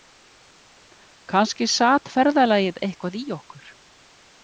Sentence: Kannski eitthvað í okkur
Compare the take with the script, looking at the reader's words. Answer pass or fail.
fail